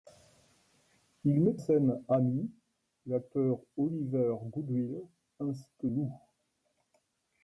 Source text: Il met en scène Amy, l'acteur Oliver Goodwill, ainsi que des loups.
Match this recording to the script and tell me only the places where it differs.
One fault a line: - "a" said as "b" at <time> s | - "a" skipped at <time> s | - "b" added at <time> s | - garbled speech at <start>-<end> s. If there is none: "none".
- "en" skipped at 1.6 s
- "des" skipped at 5.9 s